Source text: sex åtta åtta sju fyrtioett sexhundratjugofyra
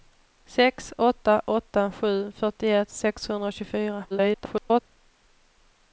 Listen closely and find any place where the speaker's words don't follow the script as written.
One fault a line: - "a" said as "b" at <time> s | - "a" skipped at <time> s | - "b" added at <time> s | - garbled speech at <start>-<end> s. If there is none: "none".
- garbled speech at 4.1-4.8 s